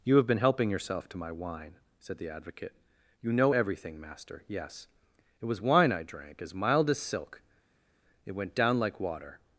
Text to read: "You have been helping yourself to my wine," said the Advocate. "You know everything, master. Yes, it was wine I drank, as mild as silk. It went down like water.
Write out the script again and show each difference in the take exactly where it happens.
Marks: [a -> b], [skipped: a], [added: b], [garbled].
"You have been helping yourself to my wine," said the Advocate. "You know everything, master. Yes, it was wine I drank, as mild as silk. It went down like water.